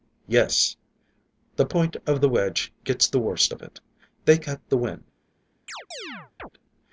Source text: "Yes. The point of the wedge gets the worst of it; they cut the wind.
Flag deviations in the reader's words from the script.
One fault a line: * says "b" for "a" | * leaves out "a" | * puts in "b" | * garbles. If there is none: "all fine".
all fine